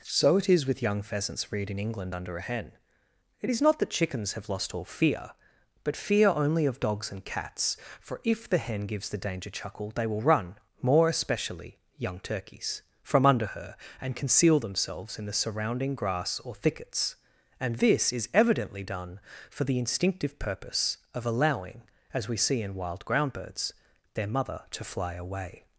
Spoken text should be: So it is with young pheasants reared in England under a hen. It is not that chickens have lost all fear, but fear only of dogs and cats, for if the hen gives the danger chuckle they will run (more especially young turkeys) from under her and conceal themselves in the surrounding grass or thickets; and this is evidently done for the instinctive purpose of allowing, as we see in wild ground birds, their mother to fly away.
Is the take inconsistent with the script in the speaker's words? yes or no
no